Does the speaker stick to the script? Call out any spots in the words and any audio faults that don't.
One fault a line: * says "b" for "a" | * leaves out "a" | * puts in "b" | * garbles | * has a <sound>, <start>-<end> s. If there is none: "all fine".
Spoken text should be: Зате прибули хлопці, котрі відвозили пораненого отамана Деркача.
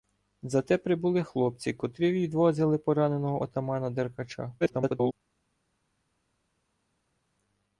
* garbles